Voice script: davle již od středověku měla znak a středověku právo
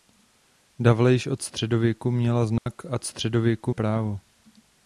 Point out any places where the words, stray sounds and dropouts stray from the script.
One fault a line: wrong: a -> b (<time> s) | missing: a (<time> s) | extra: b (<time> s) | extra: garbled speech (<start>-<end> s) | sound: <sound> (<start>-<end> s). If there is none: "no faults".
sound: dropout (2.6-2.7 s)